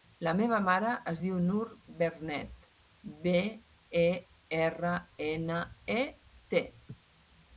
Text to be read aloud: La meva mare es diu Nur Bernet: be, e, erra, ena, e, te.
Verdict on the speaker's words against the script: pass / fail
pass